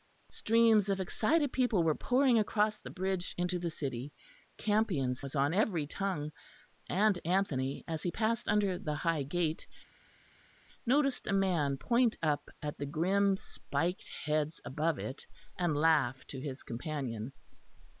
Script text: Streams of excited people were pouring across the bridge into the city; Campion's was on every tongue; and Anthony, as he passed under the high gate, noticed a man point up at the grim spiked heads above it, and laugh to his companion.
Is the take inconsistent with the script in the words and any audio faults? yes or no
no